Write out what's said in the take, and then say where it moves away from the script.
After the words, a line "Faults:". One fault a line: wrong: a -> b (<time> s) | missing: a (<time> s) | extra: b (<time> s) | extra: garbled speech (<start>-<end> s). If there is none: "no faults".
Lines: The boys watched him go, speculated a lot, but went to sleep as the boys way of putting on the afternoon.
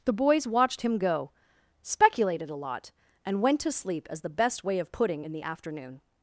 The boys watched him go, speculated a lot, and went to sleep as the best way of putting in the afternoon.
Faults:
wrong: but -> and (3.2 s)
wrong: boys -> best (4.3 s)
wrong: on -> in (5.2 s)